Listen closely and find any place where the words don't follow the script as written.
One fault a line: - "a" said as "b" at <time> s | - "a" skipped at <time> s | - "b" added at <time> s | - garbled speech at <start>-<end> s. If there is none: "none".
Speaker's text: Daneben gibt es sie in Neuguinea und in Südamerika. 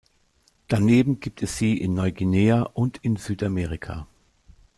none